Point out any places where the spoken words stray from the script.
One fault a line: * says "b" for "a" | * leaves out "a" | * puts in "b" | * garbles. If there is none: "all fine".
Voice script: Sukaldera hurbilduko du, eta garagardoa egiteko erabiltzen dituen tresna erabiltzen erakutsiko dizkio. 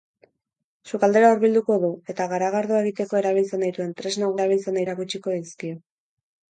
all fine